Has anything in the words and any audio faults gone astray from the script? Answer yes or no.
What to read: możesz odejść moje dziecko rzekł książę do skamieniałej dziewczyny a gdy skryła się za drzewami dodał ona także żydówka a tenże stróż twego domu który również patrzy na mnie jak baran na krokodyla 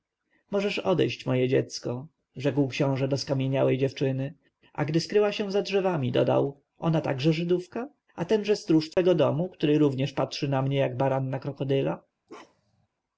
yes